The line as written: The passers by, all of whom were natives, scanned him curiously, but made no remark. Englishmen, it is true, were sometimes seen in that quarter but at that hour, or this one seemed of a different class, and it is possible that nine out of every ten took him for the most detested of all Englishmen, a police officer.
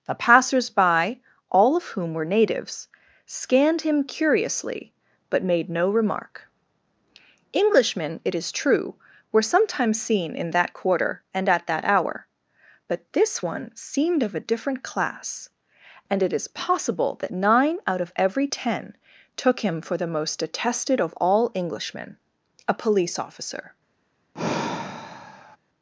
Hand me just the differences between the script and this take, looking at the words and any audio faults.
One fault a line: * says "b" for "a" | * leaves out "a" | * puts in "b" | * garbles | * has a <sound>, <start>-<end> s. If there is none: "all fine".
* says "and" for "but"
* says "but" for "or"
* has a sigh, 24.3-25.6 s